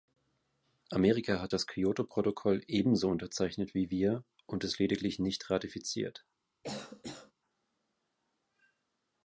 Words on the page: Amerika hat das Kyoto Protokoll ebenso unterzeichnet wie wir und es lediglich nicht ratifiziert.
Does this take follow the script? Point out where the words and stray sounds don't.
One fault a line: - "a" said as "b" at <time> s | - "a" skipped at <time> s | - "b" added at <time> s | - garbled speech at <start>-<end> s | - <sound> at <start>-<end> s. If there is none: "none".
- cough at 6.6-7.3 s